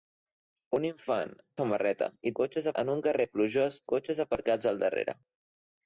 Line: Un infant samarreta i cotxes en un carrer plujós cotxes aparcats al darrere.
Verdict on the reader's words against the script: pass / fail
pass